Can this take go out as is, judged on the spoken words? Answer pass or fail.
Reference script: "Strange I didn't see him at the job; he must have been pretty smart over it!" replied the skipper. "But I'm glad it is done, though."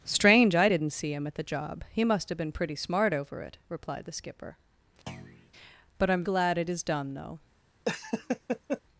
pass